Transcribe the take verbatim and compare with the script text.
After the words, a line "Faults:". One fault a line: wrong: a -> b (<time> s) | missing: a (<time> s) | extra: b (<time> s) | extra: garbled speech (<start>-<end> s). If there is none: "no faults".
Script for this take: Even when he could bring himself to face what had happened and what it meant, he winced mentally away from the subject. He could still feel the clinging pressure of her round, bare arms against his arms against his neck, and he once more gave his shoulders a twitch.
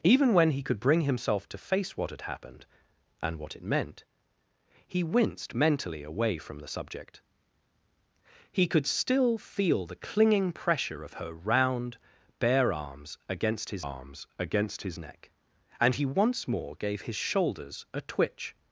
Even when he could bring himself to face what had happened and what it meant, he winced mentally away from the subject. He could still feel the clinging pressure of her round, bare arms against his arms against his neck, and he once more gave his shoulders a twitch.
Faults:
no faults